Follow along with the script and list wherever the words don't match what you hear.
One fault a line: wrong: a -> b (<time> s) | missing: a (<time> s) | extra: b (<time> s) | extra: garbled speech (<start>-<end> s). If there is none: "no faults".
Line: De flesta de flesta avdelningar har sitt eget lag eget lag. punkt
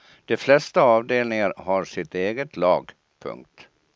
missing: de flesta (0.8 s)
missing: eget lag (2.9 s)